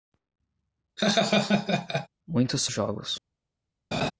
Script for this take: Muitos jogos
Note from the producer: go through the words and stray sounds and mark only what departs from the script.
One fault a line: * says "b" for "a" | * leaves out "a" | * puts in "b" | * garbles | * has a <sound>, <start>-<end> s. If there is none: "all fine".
* has a laugh, 1.0-2.1 s
* has a laugh, 3.9-4.1 s